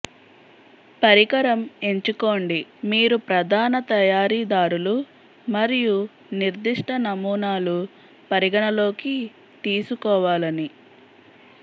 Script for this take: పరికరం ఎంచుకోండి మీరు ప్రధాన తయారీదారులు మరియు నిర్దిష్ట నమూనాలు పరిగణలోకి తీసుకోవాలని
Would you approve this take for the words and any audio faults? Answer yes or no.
yes